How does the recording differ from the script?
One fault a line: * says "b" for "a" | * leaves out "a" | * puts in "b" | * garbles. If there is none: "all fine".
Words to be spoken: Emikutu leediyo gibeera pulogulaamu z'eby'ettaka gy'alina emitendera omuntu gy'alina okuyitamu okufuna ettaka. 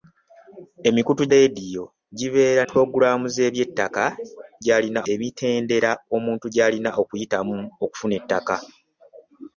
all fine